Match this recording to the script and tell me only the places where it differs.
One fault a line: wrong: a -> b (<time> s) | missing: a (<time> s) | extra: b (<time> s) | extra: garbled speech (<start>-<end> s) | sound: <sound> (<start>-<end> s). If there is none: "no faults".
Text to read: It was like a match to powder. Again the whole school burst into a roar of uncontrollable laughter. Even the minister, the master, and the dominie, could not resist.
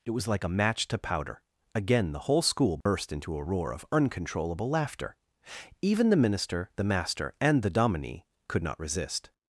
sound: dropout (2.8-2.9 s)